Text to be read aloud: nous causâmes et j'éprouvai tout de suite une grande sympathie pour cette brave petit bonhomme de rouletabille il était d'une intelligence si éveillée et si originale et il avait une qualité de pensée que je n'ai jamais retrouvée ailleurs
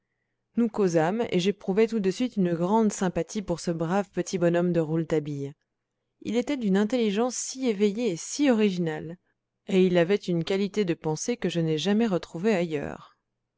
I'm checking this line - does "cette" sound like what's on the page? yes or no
no